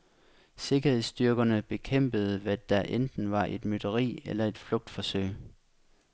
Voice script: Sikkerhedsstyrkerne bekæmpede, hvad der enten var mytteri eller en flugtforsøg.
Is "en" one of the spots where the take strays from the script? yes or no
yes